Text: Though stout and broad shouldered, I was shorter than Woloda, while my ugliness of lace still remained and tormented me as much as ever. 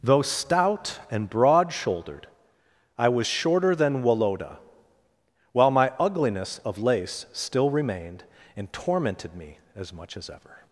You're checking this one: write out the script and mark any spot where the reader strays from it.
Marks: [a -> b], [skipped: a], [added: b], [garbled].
Though stout and broad shouldered, I was shorter than Woloda, while my ugliness of lace still remained and tormented me as much as ever.